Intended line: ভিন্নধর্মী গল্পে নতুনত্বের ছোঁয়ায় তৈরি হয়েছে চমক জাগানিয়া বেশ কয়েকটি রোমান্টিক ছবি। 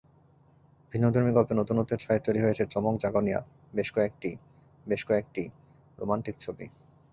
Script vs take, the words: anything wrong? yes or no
yes